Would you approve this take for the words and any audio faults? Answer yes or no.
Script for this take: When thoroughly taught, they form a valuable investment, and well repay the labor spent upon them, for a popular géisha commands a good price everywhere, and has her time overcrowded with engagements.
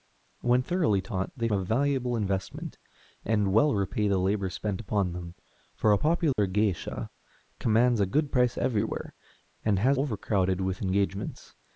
no